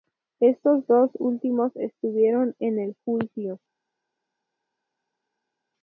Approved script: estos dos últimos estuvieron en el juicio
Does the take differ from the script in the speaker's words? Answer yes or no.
no